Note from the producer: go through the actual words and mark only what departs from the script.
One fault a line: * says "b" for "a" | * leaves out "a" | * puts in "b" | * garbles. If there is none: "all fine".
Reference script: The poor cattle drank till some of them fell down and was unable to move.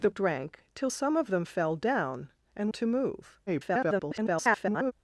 * leaves out "poor cattle"
* leaves out "was unable"
* garbles